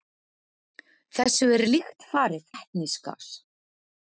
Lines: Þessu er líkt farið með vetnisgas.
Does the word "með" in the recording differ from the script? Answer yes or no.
yes